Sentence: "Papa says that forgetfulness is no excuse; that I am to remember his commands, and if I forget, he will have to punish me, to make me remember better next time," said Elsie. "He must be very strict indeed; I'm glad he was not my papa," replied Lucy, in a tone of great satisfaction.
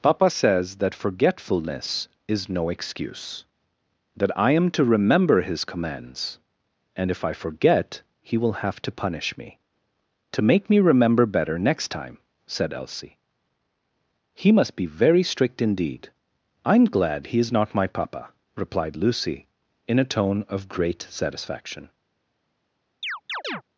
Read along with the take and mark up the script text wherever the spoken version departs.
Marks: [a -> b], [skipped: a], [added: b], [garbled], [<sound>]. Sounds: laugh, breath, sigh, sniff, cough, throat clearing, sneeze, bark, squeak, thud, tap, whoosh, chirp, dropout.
"Papa says that forgetfulness is no excuse; that I am to remember his commands, and if I forget, he will have to punish me, to make me remember better next time," said Elsie. "He must be very strict indeed; I'm glad he [was -> is] not my papa," replied Lucy, in a tone of great satisfaction. [chirp]